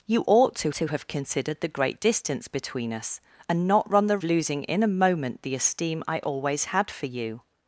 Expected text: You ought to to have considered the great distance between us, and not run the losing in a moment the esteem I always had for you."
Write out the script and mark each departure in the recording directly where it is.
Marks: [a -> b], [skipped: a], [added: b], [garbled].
You ought to to have considered the great distance between us, and not run the losing in a moment the esteem I always had for you."